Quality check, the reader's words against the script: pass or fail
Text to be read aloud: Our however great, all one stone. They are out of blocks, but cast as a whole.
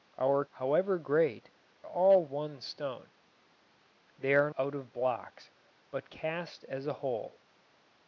pass